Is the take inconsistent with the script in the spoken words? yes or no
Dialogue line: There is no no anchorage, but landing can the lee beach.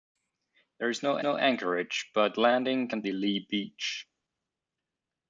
no